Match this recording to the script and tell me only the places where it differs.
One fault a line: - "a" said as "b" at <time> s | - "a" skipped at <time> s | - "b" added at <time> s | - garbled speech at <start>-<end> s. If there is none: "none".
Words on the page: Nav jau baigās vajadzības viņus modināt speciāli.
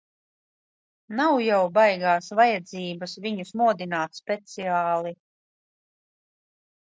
none